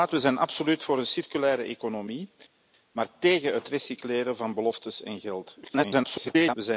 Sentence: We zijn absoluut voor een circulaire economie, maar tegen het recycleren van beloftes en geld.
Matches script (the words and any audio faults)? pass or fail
fail